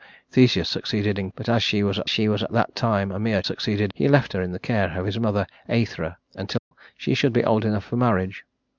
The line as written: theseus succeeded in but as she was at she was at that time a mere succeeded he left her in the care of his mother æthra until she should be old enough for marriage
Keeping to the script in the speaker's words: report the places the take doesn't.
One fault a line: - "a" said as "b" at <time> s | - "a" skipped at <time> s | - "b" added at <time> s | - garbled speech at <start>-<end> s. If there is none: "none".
none